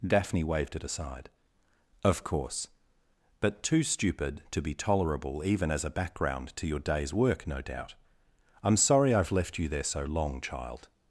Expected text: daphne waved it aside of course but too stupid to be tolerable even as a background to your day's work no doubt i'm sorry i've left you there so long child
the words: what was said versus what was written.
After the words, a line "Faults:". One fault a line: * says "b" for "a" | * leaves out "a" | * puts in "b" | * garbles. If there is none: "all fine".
daphne waved it aside of course but too stupid to be tolerable even as a background to your day's work no doubt i'm sorry i've left you there so long child
Faults:
all fine